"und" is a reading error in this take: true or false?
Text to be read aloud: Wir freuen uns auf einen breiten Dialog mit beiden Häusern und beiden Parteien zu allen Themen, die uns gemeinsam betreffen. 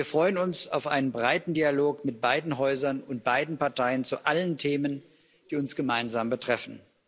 false